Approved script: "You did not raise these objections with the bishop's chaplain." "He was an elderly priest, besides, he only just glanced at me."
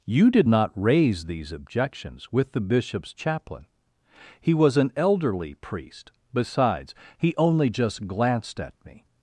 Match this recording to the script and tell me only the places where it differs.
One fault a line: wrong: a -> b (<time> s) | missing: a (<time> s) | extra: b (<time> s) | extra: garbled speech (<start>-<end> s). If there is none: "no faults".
no faults